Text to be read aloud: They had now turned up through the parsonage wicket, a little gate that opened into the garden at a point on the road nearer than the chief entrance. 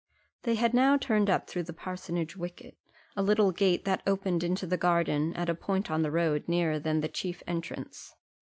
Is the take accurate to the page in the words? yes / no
yes